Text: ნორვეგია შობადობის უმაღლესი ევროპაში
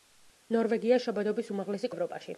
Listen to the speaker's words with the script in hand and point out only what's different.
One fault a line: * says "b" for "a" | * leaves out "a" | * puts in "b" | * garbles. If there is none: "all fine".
all fine